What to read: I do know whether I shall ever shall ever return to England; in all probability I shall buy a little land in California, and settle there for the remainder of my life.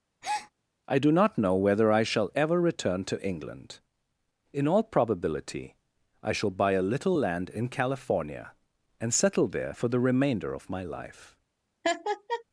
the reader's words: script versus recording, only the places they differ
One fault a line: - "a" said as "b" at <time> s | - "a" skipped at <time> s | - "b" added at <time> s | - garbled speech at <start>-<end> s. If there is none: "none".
- "not" added at 1.1 s
- "shall ever" skipped at 2.6 s